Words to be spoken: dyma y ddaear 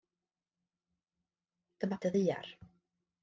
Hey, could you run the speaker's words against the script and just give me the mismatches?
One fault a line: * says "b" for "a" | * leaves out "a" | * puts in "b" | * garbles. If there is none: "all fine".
all fine